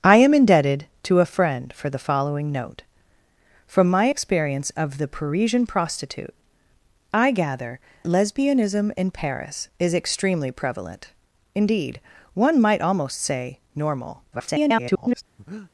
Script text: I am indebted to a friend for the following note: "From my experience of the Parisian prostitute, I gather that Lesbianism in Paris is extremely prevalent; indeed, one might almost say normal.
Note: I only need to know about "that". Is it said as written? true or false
false